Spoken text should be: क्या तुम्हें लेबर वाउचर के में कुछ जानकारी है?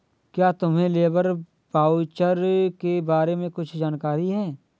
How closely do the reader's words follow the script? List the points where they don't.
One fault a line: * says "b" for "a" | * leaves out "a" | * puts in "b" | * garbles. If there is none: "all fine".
* puts in "बारे"